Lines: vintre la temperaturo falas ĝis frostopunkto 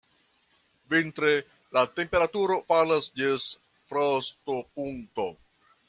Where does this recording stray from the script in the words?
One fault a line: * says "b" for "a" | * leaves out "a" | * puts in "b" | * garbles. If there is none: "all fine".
all fine